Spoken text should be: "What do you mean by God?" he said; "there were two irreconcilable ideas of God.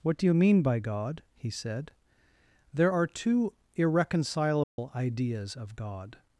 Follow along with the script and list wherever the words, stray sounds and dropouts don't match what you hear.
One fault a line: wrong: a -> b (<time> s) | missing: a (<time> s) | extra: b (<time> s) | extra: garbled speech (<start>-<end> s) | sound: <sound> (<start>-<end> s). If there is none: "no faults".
wrong: were -> are (2.9 s)
sound: dropout (4.6-4.8 s)